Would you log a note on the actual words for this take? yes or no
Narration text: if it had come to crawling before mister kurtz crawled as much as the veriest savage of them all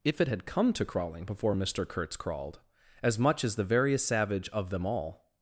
no